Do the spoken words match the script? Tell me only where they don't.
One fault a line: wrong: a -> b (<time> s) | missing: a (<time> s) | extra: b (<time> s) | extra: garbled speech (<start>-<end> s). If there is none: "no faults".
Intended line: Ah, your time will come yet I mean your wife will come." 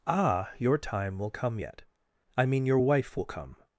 no faults